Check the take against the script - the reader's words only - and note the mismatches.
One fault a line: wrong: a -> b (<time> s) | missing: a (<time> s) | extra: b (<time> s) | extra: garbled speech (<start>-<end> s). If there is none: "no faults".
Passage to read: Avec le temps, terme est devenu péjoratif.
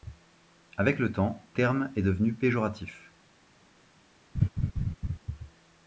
no faults